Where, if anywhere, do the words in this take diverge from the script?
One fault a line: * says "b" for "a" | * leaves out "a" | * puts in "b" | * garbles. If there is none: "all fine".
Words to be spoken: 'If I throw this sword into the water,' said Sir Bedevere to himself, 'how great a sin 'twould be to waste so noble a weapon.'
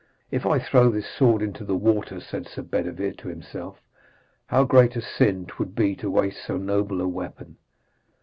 all fine